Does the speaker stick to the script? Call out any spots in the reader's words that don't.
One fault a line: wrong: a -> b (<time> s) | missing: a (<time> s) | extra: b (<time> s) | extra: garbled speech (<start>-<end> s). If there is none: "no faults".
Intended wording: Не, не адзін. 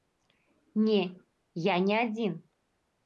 extra: я (1.5 s)